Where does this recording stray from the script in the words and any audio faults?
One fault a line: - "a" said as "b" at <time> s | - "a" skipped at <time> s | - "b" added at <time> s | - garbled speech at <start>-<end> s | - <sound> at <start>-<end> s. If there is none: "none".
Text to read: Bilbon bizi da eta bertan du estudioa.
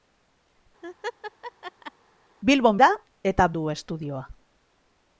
- laugh at 0.8-1.9 s
- "bizi" skipped at 2.8 s
- "bertan" skipped at 3.5 s